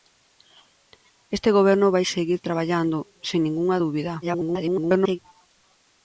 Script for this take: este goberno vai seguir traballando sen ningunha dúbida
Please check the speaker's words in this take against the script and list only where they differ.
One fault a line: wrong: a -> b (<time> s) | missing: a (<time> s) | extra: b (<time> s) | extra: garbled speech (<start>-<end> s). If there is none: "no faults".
extra: garbled speech (4.2-5.2 s)